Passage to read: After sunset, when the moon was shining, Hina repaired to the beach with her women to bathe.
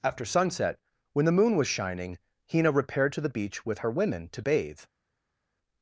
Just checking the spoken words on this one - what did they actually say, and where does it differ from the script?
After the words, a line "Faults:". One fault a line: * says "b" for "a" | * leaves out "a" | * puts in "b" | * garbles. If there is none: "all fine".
After sunset, when the moon was shining, Hina repaired to the beach with her women to bathe.
Faults:
all fine